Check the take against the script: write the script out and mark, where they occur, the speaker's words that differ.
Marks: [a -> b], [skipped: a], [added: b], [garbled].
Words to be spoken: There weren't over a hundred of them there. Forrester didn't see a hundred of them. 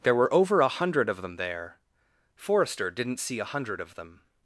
There [weren't -> were] over a hundred of them there. Forrester didn't see a hundred of them.